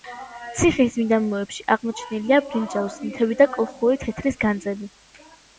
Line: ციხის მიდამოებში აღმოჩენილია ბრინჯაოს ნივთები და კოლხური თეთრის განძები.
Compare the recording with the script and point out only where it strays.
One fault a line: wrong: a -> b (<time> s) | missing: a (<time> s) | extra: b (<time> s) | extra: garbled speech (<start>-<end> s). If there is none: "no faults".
no faults